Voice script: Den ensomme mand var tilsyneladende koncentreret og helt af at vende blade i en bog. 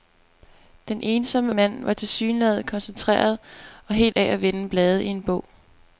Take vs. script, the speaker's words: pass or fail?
pass